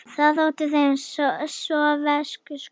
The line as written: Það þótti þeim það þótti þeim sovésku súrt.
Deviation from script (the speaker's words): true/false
true